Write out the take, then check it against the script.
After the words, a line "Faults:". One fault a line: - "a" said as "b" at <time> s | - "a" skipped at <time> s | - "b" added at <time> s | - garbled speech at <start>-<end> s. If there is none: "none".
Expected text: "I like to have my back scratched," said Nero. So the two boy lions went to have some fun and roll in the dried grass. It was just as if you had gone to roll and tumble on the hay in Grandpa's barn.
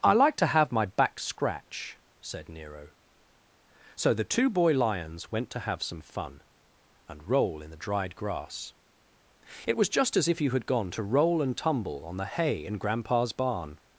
"I like to have my back scratch," said Nero. So the two boy lions went to have some fun and roll in the dried grass. It was just as if you had gone to roll and tumble on the hay in Grandpa's barn.
Faults:
- "scratched" said as "scratch" at 1.2 s